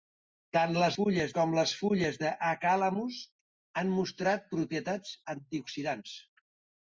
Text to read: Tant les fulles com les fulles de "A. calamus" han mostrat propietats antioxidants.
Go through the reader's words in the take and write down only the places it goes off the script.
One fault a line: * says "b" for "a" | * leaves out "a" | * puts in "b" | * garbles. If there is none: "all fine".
all fine